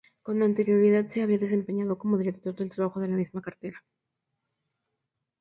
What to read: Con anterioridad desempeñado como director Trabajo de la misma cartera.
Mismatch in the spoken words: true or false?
true